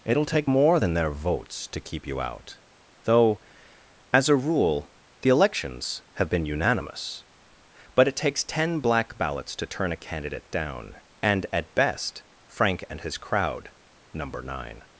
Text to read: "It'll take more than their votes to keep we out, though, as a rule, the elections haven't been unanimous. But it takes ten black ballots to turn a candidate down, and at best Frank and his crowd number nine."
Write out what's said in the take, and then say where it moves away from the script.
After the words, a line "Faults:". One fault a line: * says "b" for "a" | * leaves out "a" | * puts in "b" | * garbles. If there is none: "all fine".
"It'll take more than their votes to keep you out, though, as a rule, the elections have been unanimous. But it takes ten black ballots to turn a candidate down, and at best Frank and his crowd number nine."
Faults:
* says "you" for "we"
* says "have" for "haven't"